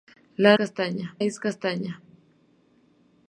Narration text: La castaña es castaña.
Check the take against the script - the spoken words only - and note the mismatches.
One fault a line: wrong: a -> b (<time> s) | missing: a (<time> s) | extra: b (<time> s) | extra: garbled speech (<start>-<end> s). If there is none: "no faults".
no faults